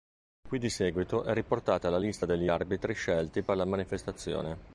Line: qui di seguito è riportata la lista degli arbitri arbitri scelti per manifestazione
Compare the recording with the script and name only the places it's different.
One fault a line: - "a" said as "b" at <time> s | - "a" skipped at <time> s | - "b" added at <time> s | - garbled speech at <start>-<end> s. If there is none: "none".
- "arbitri" skipped at 2.9 s
- "la" added at 3.5 s